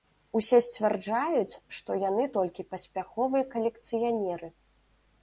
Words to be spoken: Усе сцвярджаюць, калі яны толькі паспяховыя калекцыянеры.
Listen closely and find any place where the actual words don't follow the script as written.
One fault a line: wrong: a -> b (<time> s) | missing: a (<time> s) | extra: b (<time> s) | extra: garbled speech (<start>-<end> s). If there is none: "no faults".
wrong: калі -> што (1.8 s)